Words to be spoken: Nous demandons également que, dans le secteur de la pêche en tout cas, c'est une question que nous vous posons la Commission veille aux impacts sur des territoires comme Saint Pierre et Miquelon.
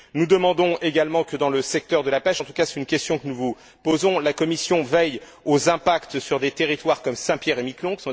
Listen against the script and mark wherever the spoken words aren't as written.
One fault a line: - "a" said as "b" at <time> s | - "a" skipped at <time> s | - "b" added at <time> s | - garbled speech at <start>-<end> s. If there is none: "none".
none